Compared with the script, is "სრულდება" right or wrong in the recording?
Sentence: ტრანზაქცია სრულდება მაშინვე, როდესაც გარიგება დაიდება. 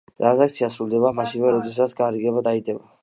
right